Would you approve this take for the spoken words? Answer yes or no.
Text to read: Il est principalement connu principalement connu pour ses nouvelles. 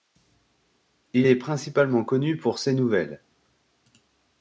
no